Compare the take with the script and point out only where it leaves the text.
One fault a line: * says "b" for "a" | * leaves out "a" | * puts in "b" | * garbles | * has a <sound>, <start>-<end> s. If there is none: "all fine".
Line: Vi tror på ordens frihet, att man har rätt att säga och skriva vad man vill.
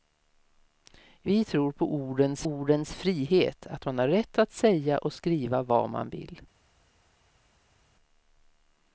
* puts in "ordens"